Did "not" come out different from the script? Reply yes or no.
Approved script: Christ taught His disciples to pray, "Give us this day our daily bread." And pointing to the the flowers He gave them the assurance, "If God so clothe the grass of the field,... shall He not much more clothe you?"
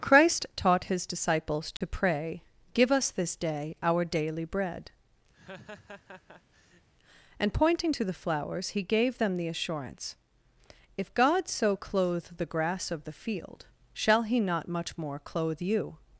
no